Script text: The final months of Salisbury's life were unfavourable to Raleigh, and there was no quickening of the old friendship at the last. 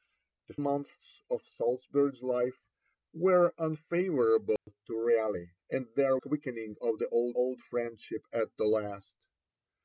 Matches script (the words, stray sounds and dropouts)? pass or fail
fail